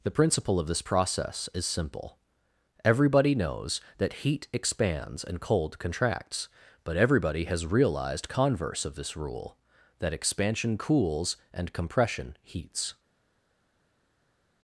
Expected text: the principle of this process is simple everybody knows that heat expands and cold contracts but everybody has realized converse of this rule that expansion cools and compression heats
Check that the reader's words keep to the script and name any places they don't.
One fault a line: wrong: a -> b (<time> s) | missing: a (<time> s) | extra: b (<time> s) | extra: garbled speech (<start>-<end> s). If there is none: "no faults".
no faults